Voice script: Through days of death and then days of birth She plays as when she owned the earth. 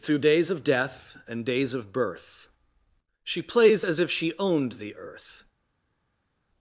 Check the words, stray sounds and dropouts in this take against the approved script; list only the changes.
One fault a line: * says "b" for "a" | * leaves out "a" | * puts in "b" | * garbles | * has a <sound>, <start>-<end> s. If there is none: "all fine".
* leaves out "then"
* says "if" for "when"